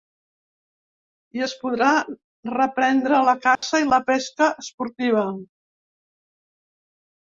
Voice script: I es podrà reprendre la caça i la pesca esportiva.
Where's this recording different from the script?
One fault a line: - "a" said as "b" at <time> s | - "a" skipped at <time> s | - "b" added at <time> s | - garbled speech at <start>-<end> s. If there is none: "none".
none